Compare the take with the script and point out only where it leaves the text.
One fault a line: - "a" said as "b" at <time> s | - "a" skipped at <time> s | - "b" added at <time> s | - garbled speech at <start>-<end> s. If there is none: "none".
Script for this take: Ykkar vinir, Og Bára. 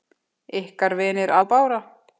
none